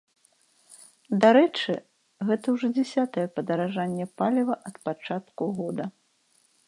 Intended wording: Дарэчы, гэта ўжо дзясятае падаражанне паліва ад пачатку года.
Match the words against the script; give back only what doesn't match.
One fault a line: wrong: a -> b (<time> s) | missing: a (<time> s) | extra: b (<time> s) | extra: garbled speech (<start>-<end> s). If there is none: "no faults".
no faults